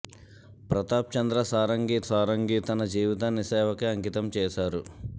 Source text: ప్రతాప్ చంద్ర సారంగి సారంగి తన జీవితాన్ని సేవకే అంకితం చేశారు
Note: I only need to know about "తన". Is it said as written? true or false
true